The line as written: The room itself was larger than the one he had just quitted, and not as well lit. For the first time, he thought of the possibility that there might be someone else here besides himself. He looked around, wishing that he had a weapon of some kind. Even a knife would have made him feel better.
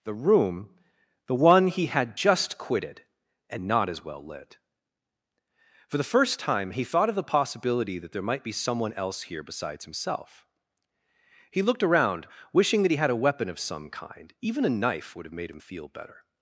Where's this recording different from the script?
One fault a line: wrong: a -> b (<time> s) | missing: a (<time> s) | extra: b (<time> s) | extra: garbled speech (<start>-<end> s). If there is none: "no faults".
missing: itself was larger than (0.8 s)